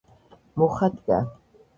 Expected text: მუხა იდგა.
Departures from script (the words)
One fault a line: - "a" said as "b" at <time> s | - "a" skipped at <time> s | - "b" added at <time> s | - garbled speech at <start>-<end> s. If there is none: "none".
none